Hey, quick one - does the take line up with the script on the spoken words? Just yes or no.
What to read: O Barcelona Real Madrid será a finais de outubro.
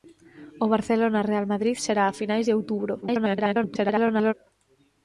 no